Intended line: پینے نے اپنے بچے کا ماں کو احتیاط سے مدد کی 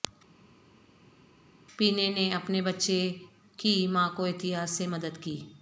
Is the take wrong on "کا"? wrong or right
wrong